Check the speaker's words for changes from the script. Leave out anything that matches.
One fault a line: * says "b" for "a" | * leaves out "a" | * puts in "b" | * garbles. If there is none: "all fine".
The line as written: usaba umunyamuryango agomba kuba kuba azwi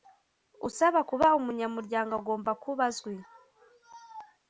* puts in "kuba"
* leaves out "kuba"